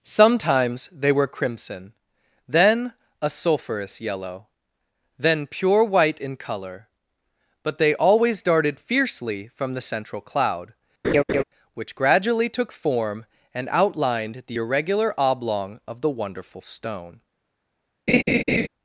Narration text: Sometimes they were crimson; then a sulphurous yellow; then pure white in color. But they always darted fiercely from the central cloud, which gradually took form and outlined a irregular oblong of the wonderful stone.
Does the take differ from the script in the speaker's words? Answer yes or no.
yes